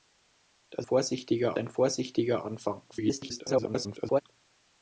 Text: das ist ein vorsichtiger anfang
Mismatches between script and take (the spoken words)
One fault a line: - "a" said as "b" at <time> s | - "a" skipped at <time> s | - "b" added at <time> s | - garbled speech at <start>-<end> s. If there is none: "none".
- "ist" said as "vorsichtiger" at 0.8 s
- garbled speech at 2.9-4.2 s